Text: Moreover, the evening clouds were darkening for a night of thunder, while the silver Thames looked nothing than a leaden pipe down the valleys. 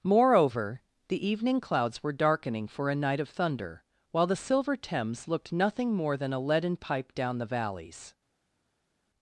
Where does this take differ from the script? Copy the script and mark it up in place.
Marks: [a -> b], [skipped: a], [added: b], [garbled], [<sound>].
Moreover, the evening clouds were darkening for a night of thunder, while the silver Thames looked nothing [added: more] than a leaden pipe down the valleys.